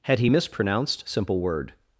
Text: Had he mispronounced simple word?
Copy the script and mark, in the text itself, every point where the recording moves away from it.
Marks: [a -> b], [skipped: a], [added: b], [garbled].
Had he mispronounced simple word?